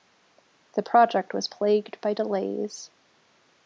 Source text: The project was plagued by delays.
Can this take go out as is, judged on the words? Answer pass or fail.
pass